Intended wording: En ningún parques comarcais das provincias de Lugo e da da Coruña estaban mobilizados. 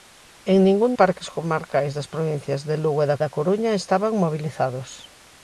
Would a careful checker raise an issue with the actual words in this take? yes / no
no